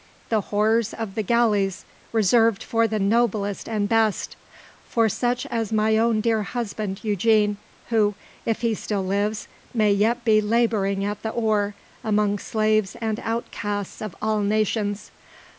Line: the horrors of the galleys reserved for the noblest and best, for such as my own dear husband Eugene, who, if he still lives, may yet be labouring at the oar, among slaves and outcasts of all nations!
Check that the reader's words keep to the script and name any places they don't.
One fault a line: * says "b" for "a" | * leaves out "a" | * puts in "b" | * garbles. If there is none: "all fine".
all fine